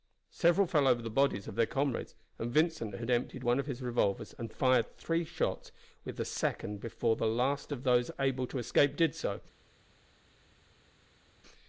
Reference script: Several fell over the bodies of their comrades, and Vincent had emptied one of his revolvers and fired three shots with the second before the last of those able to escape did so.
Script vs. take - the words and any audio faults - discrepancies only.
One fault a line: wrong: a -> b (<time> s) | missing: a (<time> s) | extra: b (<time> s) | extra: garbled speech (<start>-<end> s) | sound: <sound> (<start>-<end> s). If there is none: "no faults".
no faults